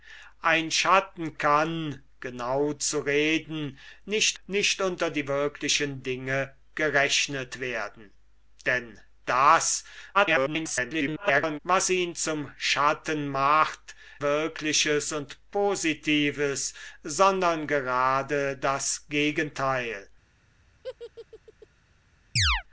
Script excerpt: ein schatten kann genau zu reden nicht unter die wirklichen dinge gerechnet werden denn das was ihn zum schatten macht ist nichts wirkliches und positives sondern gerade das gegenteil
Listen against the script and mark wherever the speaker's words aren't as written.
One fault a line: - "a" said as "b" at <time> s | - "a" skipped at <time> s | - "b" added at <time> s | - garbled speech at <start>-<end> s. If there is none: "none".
- "nicht" added at 4.4 s
- garbled speech at 10.1-11.6 s
- "ist nichts" skipped at 14.0 s